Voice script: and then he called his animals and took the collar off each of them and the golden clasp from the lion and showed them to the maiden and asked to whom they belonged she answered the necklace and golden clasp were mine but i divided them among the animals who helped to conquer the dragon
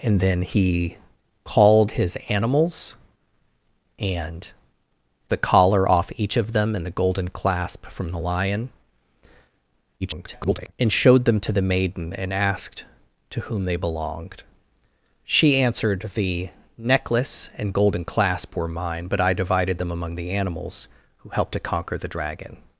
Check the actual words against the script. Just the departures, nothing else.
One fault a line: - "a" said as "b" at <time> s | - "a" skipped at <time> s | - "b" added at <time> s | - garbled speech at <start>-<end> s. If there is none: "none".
- "took" skipped at 4.5 s
- garbled speech at 10.0-10.7 s